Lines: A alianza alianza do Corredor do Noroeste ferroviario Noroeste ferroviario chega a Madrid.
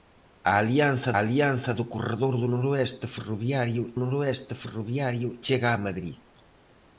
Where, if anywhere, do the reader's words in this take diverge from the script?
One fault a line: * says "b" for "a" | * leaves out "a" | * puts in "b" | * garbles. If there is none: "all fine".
all fine